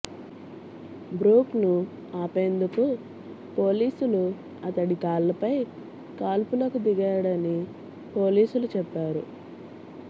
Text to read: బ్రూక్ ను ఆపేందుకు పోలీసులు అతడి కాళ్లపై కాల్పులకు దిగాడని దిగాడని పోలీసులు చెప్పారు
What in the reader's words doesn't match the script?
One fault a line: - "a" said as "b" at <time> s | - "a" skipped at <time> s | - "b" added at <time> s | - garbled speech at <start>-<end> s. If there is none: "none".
- "దిగాడని" skipped at 7.6 s